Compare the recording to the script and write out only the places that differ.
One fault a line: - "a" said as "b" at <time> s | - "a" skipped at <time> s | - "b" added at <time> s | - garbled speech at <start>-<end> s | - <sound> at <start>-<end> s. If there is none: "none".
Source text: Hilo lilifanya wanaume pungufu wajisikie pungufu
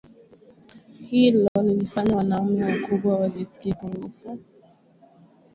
- dropout at 1.5-1.6 s
- "pungufu" said as "wakubwa" at 2.6 s